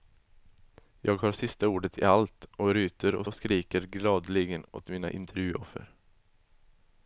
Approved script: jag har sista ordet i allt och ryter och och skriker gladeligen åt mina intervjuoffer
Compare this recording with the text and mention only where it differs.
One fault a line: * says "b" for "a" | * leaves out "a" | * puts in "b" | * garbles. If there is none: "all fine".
all fine